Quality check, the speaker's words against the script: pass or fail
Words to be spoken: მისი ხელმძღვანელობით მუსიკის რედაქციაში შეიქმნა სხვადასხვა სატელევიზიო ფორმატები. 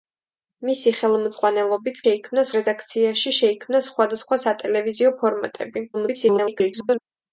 fail